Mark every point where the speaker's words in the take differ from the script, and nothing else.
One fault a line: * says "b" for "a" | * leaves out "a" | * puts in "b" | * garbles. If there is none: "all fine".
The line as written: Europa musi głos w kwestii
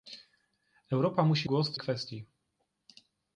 all fine